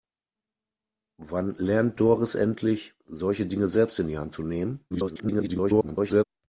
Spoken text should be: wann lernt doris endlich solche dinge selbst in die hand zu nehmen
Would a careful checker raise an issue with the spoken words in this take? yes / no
yes